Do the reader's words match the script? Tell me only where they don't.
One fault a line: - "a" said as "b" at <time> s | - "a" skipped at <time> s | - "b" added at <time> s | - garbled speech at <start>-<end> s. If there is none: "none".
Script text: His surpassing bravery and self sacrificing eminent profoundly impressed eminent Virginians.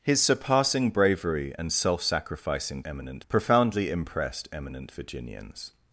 none